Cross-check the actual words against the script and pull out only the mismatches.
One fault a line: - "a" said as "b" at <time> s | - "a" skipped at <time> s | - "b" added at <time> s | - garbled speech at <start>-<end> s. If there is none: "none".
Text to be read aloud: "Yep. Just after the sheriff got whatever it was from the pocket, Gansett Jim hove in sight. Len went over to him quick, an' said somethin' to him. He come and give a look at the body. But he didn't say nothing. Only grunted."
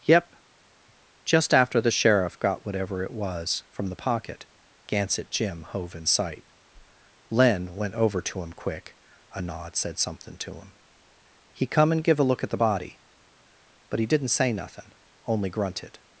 - "an" said as "a nod" at 9.3 s
- "somethin" said as "something" at 10.0 s